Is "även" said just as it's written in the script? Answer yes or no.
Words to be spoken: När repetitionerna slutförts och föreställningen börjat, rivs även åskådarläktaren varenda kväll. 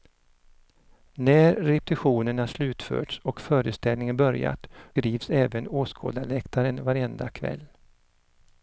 yes